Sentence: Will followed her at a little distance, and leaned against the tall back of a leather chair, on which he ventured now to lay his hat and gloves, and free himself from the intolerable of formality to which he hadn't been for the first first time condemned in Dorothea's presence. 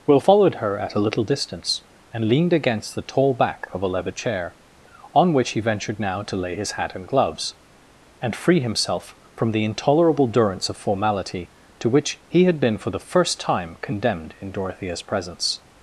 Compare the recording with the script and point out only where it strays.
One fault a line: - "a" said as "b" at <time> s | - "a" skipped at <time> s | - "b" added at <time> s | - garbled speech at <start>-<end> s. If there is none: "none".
- "durance" added at 10.3 s
- "hadn't" said as "had" at 12.4 s
- "first" skipped at 13.4 s